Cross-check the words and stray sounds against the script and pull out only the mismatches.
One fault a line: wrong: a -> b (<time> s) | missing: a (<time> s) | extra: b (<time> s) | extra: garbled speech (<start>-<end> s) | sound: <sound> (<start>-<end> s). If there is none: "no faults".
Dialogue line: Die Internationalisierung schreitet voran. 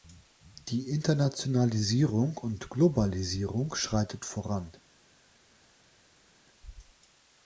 extra: und Globalisierung (2.4 s)